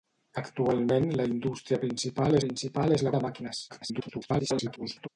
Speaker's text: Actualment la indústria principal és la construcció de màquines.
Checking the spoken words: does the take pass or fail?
fail